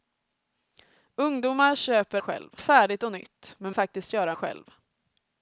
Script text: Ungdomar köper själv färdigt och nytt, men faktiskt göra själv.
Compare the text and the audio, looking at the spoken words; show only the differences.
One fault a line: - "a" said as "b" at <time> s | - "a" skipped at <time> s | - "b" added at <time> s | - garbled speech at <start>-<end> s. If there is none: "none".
none